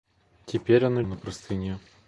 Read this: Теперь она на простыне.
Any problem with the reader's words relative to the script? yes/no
no